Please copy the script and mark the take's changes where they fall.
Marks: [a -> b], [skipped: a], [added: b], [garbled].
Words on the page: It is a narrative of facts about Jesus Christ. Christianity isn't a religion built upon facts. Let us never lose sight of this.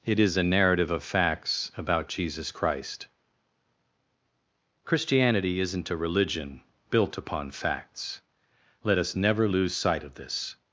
It is a narrative of facts about Jesus Christ. Christianity isn't a religion built upon facts. Let us never lose sight of this.